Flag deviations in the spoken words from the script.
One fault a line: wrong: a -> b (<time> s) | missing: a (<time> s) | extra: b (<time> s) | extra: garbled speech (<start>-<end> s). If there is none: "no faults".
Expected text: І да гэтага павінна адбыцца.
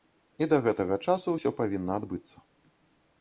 extra: часу ўсё (1.1 s)